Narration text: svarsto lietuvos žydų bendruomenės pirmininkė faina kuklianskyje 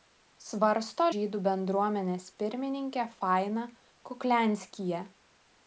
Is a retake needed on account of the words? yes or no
yes